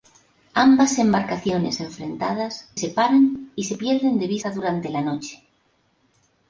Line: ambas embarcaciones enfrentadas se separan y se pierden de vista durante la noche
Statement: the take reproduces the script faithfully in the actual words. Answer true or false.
false